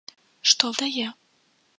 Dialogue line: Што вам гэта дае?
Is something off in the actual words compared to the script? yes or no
yes